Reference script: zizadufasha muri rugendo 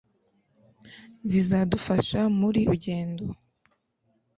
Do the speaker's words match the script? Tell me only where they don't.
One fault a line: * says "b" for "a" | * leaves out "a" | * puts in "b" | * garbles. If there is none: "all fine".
all fine